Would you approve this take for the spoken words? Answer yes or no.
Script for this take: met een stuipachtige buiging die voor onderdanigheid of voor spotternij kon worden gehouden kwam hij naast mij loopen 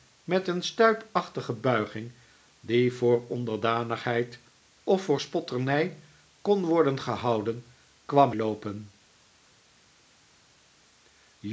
no